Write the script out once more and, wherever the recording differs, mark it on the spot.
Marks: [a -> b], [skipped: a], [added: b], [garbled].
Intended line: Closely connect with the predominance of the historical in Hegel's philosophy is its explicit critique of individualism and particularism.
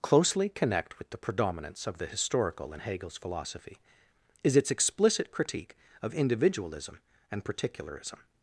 Closely connect with the predominance of the historical in Hegel's philosophy is its explicit critique of individualism and particularism.